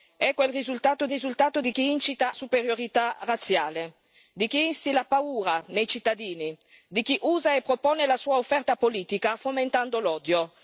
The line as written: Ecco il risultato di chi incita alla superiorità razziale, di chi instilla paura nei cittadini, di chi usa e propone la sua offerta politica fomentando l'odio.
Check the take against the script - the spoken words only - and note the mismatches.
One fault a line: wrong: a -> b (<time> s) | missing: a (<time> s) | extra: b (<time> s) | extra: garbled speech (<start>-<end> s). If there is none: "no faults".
extra: risultato (1.1 s)
missing: alla (2.3 s)